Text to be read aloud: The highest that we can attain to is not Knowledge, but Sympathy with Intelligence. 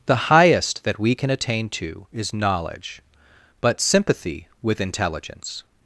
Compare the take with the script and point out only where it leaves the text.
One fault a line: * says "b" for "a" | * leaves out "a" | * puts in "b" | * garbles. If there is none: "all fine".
* leaves out "not"